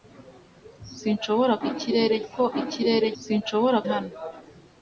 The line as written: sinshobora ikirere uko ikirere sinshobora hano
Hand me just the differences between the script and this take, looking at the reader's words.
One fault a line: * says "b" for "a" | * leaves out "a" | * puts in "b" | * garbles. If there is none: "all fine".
all fine